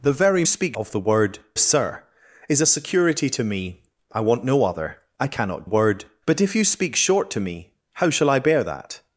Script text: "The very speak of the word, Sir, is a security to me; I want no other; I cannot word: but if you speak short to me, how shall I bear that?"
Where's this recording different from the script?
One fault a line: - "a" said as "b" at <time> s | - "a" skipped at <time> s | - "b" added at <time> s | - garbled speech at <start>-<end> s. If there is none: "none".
none